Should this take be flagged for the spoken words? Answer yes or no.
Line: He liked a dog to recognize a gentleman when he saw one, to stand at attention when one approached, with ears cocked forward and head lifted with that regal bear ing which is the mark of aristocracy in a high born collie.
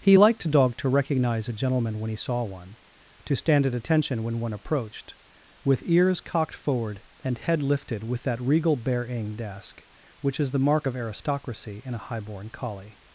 yes